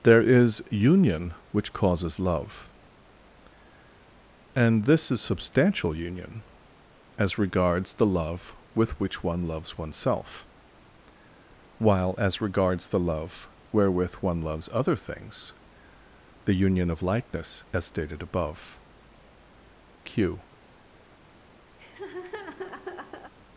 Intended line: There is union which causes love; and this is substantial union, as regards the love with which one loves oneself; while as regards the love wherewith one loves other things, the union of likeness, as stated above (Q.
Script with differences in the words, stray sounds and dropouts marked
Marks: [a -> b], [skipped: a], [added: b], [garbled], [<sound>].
There is union which causes love; and this is substantial union, as regards the love with which one loves oneself; while as regards the love wherewith one loves other things, the union of likeness, as stated above (Q. [laugh]